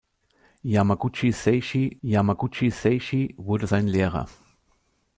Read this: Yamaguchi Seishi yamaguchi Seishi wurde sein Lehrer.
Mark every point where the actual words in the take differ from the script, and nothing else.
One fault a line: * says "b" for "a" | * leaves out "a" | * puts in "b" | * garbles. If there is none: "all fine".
all fine